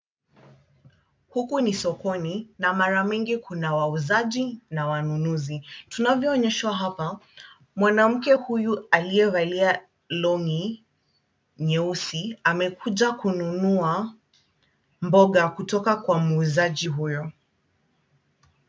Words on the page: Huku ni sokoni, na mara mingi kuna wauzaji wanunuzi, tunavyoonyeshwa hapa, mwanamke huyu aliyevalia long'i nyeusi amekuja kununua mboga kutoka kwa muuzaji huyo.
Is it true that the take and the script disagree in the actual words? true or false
true